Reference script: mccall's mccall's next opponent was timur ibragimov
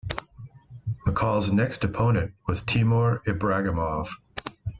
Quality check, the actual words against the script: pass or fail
fail